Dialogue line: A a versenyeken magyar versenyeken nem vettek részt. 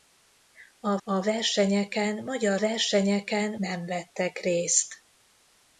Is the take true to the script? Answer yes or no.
yes